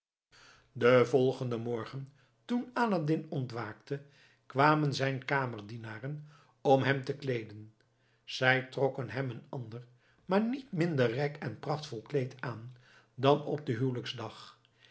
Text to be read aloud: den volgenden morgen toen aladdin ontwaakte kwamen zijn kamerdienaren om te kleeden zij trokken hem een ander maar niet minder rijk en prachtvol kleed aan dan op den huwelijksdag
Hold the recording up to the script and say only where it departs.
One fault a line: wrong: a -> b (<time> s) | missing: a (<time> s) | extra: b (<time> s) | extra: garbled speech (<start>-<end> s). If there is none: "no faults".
extra: hem (6.8 s)